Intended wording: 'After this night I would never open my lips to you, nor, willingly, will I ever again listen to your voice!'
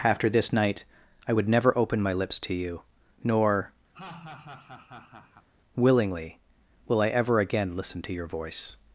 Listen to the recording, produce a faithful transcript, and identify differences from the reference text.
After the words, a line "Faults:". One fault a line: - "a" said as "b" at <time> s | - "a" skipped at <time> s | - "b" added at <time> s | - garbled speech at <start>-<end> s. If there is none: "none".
'After this night I would never open my lips to you, nor, willingly, will I ever again listen to your voice!'
Faults:
none